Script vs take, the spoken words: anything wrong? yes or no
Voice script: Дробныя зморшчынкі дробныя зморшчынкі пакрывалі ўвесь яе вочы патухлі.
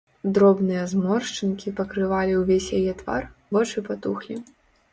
yes